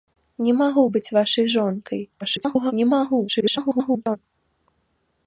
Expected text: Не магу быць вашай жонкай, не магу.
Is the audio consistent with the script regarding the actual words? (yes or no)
no